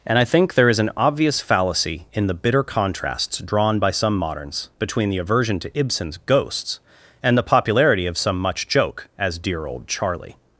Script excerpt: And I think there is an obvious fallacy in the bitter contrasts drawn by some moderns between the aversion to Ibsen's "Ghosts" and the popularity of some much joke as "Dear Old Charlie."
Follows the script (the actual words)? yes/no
yes